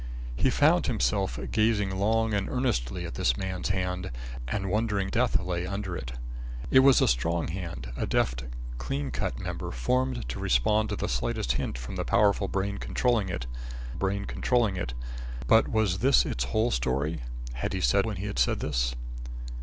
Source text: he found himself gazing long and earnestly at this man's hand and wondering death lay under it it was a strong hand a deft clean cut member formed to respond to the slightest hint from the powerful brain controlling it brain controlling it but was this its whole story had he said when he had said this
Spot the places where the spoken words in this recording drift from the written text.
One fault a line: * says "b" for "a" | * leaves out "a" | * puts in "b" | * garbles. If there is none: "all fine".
all fine